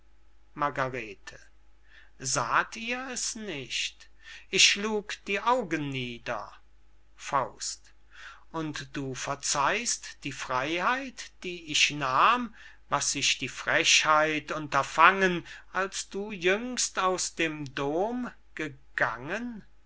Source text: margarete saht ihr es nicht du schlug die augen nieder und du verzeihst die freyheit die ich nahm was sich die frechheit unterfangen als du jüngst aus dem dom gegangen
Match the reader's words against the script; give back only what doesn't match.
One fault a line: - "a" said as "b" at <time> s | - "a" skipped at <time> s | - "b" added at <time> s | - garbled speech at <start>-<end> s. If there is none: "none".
- "du" said as "ich" at 4.5 s